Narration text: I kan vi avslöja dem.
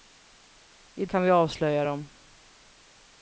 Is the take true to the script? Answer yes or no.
yes